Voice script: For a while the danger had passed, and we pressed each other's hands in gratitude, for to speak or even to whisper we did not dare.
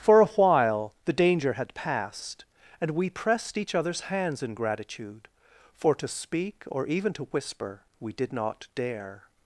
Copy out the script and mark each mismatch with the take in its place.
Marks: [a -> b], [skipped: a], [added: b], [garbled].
For a while the danger had passed, and we pressed each other's hands in gratitude, for to speak or even to whisper we did not dare.